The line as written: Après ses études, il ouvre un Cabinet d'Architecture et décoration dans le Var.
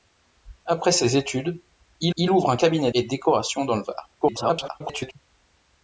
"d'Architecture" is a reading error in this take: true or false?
true